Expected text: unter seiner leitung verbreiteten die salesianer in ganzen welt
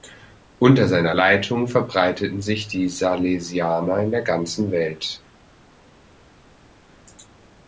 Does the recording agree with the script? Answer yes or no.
no